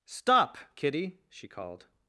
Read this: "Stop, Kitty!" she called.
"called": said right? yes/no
yes